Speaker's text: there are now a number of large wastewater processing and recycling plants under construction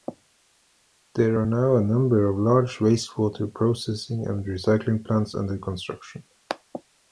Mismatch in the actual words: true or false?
false